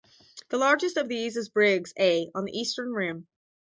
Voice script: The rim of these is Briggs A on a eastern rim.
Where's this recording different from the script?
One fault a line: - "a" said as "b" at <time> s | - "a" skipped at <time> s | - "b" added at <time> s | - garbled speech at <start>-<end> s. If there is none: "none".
- "rim" said as "largest" at 0.6 s
- "a" said as "the" at 2.5 s